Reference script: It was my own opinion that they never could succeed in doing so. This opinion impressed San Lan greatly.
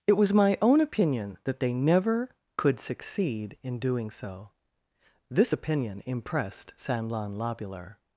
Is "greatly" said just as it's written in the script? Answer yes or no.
no